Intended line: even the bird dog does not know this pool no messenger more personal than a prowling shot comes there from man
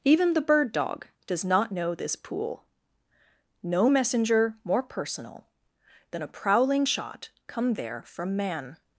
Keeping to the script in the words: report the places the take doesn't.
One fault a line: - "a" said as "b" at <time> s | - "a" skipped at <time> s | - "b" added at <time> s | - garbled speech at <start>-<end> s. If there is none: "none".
- "comes" said as "come" at 7.5 s